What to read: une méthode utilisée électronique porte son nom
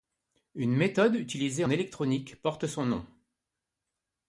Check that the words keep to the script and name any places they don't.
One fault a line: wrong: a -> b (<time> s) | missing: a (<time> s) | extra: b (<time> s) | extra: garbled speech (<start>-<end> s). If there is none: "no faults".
no faults